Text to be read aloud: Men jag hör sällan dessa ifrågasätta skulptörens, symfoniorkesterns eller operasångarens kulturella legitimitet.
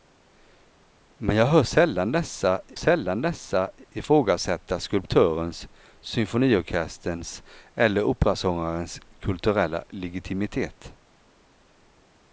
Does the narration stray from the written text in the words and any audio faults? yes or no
yes